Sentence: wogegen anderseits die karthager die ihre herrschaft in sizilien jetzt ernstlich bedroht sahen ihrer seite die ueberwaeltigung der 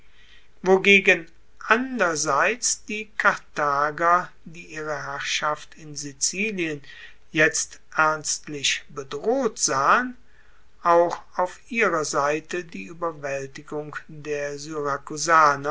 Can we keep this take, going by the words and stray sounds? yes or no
no